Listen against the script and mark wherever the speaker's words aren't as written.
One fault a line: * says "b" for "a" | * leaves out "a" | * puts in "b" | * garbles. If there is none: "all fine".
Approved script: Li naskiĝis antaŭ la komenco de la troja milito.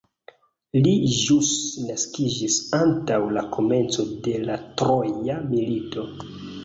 * puts in "ĵus"